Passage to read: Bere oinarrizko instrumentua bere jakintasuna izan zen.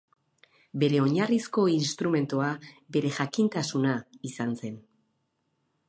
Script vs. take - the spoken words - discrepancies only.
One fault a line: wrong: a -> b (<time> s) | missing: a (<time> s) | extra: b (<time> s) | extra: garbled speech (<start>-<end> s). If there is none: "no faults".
no faults